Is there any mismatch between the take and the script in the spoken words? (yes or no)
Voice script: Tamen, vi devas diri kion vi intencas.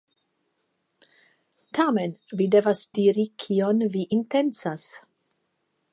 no